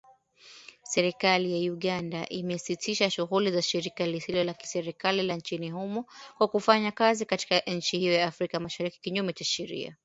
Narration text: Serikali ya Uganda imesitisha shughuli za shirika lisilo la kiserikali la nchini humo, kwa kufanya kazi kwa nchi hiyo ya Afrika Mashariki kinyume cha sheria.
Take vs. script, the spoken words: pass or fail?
fail